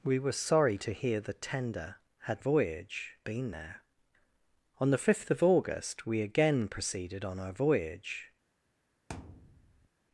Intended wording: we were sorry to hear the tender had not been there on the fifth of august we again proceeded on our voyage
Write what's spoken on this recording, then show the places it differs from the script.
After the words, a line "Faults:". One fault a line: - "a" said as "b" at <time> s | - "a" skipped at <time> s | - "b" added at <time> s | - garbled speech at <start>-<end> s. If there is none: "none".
we were sorry to hear the tender had voyage been there on the fifth of august we again proceeded on our voyage
Faults:
- "not" said as "voyage" at 2.4 s